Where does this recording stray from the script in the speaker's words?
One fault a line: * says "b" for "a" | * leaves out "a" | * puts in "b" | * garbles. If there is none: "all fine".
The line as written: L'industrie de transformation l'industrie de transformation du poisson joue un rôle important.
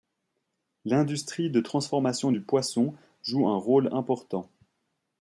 * leaves out "l'industrie de transformation"